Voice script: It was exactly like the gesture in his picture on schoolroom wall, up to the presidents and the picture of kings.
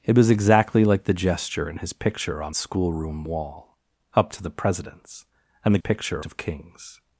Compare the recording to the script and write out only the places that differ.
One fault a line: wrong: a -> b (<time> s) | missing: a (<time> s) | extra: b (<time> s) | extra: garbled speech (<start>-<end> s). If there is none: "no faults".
no faults